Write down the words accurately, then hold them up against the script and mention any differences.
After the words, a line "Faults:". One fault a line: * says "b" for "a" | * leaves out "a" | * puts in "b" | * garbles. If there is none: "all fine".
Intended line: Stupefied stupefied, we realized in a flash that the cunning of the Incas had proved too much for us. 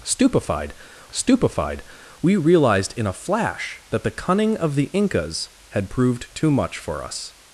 Stupefied stupefied, we realized in a flash that the cunning of the Incas had proved too much for us.
Faults:
all fine